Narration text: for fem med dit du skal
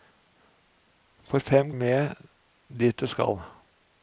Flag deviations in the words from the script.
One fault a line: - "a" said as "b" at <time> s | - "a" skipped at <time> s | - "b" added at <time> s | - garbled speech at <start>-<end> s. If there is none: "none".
none